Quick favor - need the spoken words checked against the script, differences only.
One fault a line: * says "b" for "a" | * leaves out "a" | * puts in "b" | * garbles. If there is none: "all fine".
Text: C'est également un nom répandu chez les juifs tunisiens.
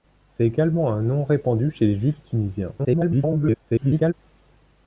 * garbles